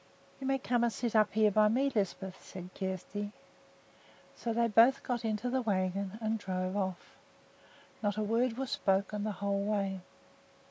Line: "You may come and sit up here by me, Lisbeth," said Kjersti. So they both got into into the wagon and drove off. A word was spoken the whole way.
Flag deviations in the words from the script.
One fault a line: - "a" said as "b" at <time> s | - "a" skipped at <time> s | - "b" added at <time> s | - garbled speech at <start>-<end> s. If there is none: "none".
- "into" skipped at 5.5 s
- "Not" added at 8.0 s